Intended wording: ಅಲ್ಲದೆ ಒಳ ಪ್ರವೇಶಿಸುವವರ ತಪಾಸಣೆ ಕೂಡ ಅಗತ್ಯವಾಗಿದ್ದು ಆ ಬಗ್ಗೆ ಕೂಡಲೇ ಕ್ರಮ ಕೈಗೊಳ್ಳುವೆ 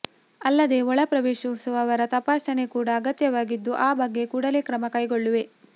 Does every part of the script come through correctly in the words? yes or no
yes